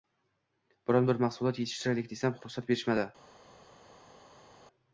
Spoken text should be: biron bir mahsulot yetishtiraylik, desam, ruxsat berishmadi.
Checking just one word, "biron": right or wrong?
right